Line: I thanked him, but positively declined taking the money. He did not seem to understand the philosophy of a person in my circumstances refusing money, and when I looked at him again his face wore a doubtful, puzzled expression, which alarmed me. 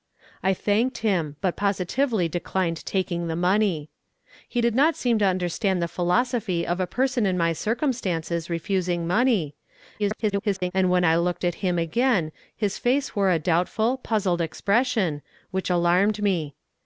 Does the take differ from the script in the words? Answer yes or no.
yes